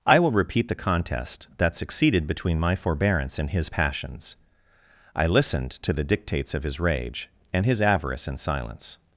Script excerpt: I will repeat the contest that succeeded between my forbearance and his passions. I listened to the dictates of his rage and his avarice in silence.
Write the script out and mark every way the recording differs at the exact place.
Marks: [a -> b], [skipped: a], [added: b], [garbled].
I will repeat the contest that succeeded between my forbearance and his passions. I listened to the dictates of his rage and his avarice in silence.